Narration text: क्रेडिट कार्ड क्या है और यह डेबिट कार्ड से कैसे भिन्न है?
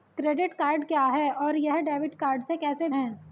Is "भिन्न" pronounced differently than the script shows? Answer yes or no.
yes